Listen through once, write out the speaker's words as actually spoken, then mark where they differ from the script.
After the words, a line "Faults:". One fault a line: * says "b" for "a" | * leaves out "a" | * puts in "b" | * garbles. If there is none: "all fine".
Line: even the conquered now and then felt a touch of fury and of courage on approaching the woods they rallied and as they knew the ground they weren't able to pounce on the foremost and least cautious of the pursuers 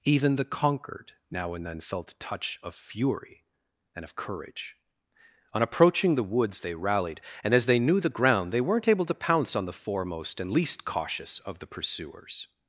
even the conquered now and then felt a touch of fury and of courage on approaching the woods they rallied and as they knew the ground they weren't able to pounce on the foremost and least cautious of the pursuers
Faults:
all fine